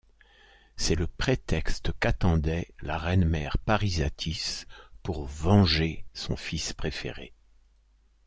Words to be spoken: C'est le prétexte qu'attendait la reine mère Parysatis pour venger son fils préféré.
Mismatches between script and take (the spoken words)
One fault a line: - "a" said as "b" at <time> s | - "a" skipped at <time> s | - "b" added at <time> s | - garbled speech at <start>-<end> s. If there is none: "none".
none